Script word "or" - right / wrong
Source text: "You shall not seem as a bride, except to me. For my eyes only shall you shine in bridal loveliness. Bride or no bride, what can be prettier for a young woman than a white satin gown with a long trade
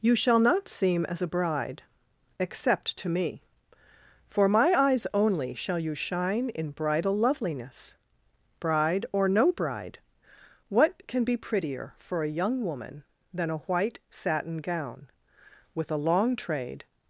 right